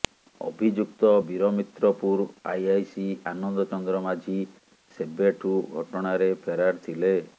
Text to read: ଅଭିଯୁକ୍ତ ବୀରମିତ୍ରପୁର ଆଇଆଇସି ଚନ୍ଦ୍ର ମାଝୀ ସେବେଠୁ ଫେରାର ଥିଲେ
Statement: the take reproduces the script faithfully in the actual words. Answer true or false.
false